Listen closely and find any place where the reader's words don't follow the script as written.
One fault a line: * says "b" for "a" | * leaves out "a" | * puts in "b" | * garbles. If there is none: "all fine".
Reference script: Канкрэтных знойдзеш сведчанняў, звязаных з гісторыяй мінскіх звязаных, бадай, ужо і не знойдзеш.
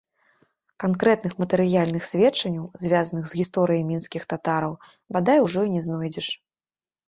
* says "матэрыяльных" for "знойдзеш"
* says "татараў" for "звязаных"